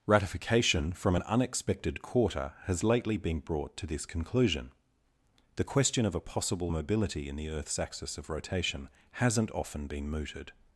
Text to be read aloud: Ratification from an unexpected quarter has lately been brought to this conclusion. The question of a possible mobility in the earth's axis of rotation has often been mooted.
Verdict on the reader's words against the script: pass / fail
fail